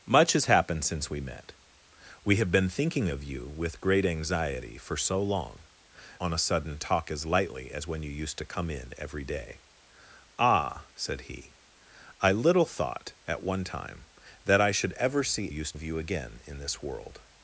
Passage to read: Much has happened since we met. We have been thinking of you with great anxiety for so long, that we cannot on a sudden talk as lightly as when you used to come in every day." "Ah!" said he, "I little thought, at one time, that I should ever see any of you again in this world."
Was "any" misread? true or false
true